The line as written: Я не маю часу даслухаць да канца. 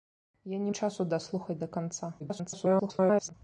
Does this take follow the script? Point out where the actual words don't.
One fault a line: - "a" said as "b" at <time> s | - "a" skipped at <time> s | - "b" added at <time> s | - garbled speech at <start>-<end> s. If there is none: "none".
- "маю" skipped at 0.7 s
- garbled speech at 2.2-3.3 s